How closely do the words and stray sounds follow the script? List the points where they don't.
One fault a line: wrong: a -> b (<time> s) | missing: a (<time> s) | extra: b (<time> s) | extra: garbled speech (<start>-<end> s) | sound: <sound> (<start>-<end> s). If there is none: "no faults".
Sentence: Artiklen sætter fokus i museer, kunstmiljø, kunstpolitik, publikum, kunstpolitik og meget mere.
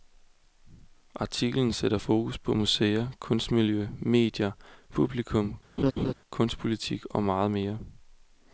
wrong: i -> på (2.4 s)
wrong: kunstpolitik -> medier (4.0 s)
sound: laugh (5.8-6.1 s)